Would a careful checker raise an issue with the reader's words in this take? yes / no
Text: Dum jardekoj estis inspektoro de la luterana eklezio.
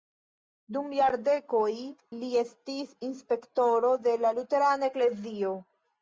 yes